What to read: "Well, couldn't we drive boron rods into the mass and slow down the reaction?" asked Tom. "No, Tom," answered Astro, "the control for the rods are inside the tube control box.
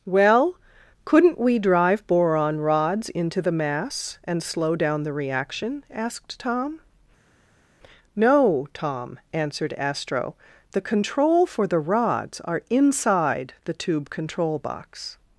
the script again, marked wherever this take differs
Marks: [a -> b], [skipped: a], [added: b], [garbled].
"Well, couldn't we drive boron rods into the mass and slow down the reaction?" asked Tom. "No, Tom," answered Astro, "the control for the rods are inside the tube control box.